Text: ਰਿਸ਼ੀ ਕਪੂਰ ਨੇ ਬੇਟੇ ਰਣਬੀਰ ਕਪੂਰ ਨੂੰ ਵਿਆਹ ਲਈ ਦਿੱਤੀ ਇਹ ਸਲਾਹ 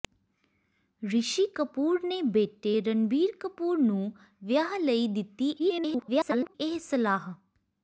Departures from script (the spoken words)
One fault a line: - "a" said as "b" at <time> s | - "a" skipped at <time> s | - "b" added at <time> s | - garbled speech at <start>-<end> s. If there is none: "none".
- garbled speech at 5.6-6.5 s